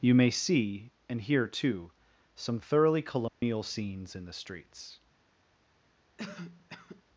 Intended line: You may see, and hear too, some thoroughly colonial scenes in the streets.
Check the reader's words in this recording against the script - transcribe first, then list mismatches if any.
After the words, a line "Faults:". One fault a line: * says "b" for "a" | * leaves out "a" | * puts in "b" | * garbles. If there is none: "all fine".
You may see, and hear too, some thoroughly colonial scenes in the streets.
Faults:
all fine